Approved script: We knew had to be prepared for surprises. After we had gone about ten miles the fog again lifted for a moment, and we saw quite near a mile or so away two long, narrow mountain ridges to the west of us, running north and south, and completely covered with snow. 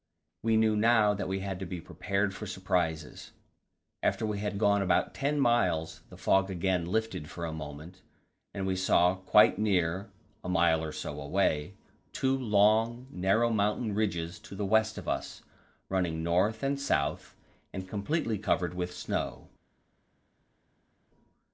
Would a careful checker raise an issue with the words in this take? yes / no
yes